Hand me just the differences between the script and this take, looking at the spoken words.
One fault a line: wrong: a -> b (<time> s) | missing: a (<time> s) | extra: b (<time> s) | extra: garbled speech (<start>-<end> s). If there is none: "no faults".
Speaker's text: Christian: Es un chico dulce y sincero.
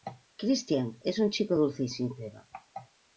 no faults